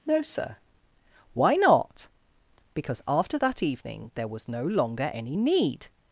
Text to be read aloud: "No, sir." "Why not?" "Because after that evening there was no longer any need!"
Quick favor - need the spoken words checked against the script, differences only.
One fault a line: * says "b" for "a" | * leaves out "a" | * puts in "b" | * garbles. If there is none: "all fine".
all fine